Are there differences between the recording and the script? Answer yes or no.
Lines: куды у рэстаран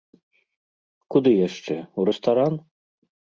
yes